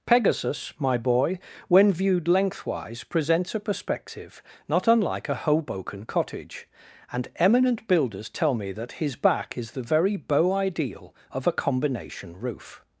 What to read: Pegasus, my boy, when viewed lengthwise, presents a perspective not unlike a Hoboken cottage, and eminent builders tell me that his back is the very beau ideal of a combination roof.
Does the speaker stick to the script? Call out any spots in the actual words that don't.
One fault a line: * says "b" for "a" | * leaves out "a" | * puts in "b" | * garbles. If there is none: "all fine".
all fine